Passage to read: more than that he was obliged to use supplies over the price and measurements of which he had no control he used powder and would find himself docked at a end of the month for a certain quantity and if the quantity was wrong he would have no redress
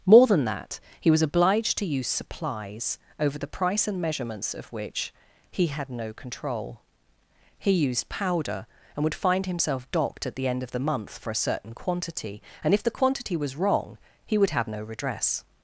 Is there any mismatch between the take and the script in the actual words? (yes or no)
yes